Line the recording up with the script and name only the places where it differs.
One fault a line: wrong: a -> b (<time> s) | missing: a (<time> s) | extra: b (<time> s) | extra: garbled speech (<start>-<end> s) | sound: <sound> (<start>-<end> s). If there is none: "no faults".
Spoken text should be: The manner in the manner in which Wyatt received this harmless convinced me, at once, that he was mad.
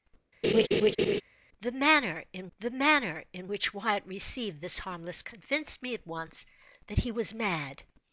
sound: laugh (0.4-1.2 s)